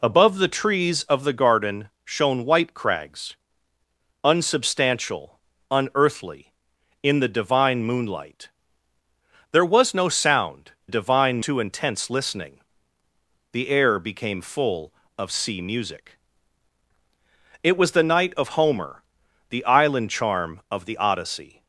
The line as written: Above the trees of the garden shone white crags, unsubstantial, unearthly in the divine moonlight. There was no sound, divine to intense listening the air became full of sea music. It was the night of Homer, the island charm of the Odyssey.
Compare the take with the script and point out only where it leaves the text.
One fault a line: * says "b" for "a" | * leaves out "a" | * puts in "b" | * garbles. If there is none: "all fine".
all fine